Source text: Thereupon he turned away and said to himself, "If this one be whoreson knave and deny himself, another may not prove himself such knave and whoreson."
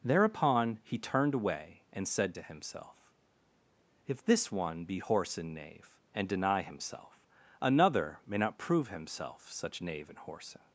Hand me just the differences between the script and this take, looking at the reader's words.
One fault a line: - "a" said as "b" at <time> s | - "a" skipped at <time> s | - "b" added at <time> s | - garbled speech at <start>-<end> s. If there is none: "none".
none